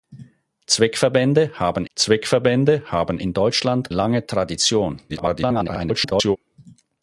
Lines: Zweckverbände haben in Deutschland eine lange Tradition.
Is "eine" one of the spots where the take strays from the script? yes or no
yes